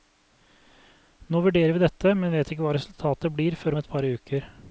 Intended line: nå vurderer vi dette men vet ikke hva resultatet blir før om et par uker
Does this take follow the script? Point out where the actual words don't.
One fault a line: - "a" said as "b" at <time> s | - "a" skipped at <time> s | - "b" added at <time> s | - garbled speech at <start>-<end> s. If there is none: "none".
none